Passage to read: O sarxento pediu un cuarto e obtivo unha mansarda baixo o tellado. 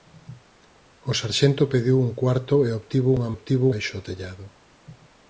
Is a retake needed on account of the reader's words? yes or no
yes